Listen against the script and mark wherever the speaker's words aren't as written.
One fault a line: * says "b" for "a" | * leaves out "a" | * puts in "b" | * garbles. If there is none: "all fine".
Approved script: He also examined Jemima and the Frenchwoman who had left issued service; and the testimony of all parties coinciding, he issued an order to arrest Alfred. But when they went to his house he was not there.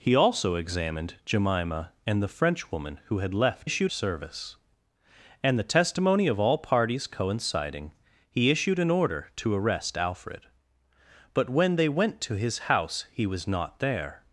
all fine